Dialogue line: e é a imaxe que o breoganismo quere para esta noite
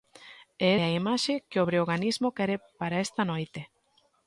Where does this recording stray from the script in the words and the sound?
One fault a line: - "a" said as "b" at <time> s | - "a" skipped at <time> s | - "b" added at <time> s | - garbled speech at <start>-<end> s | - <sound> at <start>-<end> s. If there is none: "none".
none